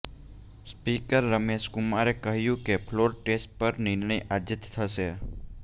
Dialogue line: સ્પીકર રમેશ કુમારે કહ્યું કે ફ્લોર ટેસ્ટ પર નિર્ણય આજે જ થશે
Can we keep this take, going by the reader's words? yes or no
yes